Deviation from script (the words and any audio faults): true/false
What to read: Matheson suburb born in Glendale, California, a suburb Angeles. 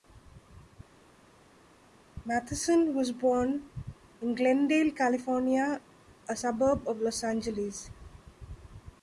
true